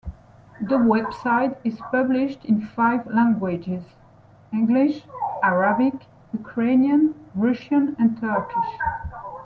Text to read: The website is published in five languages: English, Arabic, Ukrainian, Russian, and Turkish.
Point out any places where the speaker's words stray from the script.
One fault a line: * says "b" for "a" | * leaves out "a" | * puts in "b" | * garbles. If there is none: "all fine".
all fine